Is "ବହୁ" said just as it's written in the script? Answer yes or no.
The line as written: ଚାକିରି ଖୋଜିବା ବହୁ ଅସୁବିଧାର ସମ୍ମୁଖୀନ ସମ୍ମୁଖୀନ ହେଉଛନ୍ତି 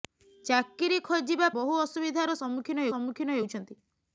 yes